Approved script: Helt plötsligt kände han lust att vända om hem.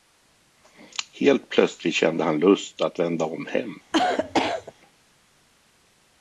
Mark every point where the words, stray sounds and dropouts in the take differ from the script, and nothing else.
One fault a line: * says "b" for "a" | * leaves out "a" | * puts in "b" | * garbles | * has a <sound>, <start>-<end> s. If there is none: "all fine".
* has a cough, 3.9-4.7 s